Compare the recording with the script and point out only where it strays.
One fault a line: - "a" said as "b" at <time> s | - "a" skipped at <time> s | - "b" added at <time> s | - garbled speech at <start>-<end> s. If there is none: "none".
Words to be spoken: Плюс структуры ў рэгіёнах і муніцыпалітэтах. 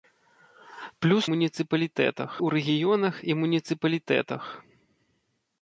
- "структуры" said as "муніцыпалітэтах" at 1.3 s